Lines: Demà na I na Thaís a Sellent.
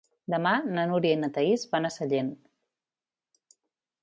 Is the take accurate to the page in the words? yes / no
no